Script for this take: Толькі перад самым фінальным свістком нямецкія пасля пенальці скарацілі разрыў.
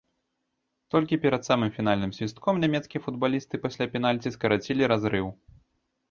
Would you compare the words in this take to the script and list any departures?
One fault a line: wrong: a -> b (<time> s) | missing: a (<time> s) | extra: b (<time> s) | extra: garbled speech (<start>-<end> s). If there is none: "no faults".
extra: футбалісты (3.1 s)